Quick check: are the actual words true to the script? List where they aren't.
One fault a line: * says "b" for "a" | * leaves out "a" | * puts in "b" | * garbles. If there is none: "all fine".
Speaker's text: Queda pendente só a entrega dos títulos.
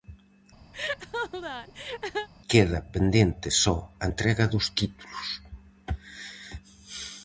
all fine